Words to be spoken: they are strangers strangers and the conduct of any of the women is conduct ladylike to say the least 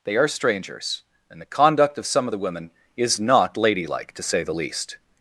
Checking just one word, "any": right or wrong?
wrong